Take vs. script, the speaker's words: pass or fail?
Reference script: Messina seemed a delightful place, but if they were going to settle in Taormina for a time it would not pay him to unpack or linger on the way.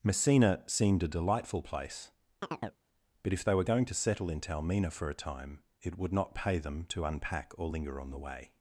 fail